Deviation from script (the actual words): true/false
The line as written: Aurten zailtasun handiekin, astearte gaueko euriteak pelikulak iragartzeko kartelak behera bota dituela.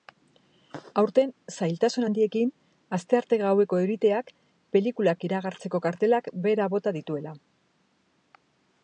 false